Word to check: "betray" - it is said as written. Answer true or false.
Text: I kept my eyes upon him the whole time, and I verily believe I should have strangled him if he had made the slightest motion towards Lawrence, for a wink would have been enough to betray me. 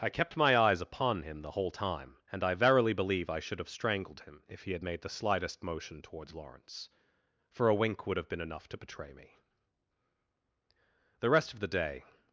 true